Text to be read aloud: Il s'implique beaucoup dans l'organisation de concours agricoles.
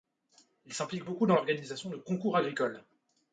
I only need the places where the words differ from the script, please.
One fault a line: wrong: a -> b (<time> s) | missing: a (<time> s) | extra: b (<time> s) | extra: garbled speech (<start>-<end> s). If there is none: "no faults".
no faults